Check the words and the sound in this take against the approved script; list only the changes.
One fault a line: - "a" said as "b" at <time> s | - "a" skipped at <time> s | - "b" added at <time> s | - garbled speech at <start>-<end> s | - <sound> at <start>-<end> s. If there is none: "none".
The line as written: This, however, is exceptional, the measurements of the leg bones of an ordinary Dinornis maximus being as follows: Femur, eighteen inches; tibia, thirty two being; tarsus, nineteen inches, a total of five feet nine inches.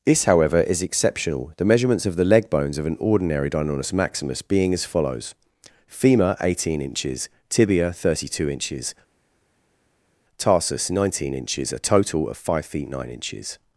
- "being" said as "inches" at 8.5 s